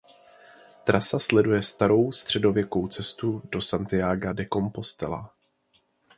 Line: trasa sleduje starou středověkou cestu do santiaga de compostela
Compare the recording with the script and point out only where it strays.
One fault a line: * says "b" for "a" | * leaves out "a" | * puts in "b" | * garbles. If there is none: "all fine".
all fine